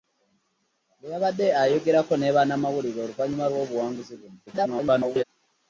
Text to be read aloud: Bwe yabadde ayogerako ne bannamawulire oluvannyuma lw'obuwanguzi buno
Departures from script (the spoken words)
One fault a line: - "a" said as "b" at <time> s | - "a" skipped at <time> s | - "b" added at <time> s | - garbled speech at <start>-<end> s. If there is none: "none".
- garbled speech at 4.5-5.2 s